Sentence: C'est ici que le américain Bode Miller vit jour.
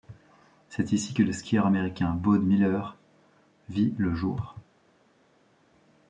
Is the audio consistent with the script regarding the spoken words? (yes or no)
no